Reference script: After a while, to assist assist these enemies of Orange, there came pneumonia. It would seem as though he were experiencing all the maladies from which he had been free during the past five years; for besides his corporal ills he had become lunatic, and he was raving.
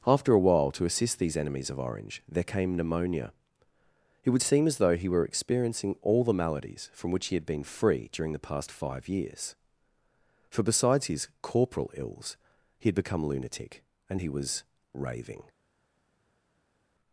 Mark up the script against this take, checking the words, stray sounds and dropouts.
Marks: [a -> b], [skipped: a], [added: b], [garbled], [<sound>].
After a while, to assist [skipped: assist] these enemies of Orange, there came pneumonia. It would seem as though he were experiencing all the maladies from which he had been free during the past five years; for besides his corporal ills he had become lunatic, and he was raving.